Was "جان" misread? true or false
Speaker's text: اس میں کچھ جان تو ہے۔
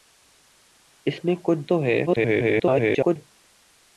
true